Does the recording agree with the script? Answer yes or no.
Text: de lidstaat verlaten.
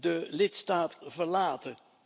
yes